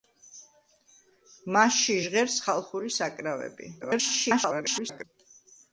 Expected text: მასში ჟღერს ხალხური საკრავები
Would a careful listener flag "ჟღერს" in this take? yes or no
no